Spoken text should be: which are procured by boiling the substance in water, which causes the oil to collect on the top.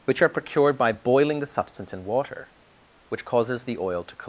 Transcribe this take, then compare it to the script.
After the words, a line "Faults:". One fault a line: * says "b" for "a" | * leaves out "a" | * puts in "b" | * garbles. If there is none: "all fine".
which are procured by boiling the substance in water, which causes the oil to collect.
Faults:
* leaves out "on the top"